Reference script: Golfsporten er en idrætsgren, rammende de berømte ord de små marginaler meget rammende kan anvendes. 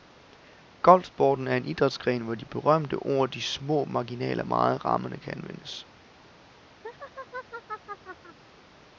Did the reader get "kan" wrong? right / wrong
right